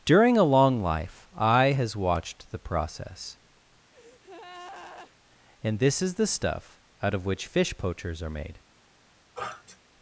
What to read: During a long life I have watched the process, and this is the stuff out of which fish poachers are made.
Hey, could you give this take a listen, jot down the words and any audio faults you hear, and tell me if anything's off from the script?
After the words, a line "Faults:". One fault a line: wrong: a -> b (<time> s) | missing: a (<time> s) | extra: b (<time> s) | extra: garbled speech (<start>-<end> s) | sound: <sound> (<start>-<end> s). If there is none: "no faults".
During a long life I has watched the process, and this is the stuff out of which fish poachers are made.
Faults:
wrong: have -> has (1.7 s)
sound: breath (3.9-5.1 s)
sound: sniff (9.3-9.8 s)